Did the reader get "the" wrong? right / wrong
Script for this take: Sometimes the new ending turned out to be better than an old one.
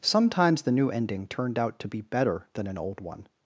right